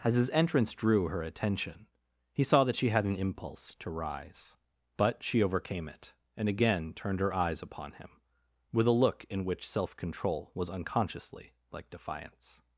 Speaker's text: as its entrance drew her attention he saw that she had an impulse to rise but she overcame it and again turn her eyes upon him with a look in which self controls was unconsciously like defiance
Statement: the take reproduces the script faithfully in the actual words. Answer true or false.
false